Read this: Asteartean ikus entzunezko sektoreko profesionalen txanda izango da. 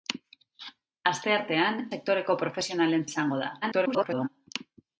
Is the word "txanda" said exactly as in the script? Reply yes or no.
no